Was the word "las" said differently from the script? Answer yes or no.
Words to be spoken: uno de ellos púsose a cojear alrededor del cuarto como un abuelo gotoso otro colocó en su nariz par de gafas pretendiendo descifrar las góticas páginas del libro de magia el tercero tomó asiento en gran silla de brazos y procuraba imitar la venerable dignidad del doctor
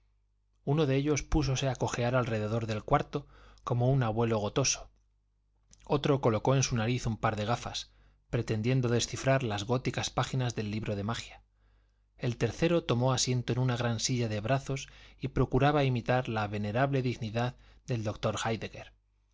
no